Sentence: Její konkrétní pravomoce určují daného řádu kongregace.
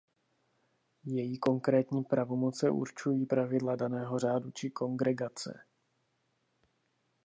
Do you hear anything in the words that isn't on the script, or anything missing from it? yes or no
yes